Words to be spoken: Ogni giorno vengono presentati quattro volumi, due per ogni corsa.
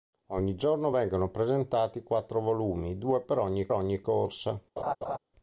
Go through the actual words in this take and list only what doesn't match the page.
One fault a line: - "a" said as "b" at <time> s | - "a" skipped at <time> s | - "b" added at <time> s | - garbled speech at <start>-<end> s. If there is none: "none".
- "ogni" added at 3.7 s